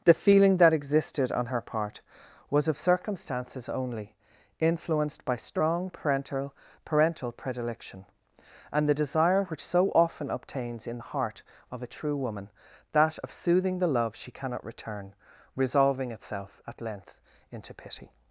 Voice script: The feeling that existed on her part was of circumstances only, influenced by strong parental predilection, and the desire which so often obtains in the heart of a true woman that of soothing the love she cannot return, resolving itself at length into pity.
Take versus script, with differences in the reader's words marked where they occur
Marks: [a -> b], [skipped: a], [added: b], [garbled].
The feeling that existed on her part was of circumstances only, influenced by strong parental [added: parental] predilection, and the desire which so often obtains in the heart of a true woman that of soothing the love she cannot return, resolving itself at length into pity.